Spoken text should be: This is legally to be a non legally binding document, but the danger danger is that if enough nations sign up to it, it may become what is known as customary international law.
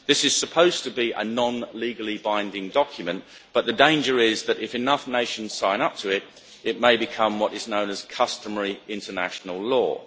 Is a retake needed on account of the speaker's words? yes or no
yes